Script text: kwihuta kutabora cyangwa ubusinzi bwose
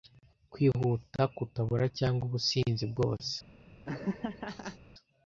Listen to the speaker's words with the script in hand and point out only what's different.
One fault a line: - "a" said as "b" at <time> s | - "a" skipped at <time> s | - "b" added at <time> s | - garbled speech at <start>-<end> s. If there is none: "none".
none